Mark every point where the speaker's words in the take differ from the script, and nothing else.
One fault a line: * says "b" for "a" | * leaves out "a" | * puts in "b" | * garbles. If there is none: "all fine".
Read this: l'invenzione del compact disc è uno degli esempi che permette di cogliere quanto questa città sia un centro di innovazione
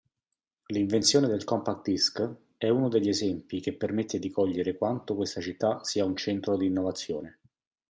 all fine